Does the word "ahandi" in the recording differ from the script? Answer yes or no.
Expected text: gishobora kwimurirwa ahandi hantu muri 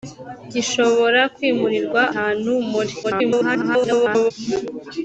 yes